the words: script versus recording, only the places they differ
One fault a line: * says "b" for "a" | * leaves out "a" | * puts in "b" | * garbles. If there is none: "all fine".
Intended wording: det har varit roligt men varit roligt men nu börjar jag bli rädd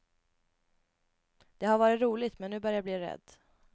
* leaves out "varit roligt men"